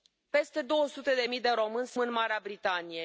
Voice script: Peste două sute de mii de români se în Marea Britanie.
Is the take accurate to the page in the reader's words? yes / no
yes